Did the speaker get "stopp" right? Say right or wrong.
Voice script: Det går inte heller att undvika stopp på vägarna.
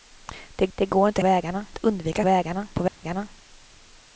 wrong